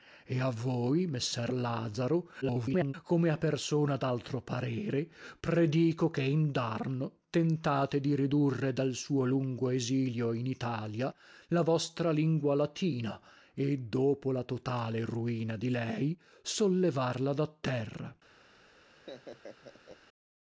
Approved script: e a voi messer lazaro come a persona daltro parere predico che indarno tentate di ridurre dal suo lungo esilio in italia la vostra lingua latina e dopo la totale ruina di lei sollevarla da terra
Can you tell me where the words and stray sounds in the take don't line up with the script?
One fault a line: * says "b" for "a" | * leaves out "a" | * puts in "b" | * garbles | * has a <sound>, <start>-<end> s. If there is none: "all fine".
* garbles
* has a laugh, 18.9-20.0 s